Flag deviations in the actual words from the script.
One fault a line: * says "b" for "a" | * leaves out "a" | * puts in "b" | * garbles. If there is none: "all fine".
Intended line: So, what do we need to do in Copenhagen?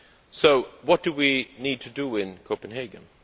all fine